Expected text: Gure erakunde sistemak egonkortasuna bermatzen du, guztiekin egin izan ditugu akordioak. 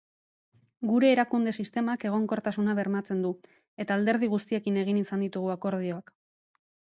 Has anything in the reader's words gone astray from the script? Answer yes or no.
yes